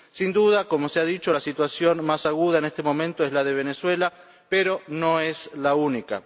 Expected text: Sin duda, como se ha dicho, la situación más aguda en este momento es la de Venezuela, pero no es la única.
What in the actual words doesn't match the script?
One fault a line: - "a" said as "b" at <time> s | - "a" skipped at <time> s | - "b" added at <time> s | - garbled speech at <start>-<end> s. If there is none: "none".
none